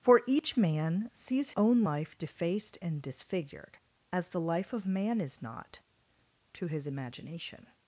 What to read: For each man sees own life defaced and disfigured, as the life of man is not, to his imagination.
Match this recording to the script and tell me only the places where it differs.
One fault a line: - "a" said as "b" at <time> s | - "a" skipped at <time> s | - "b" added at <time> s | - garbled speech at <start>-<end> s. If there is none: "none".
none